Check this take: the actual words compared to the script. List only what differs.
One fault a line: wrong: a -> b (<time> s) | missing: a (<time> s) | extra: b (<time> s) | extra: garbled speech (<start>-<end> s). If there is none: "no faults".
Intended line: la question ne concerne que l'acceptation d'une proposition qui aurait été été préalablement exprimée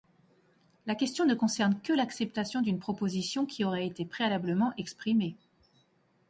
missing: été (4.0 s)